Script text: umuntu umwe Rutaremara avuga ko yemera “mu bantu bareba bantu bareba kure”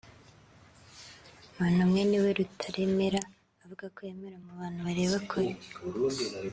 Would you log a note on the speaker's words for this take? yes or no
yes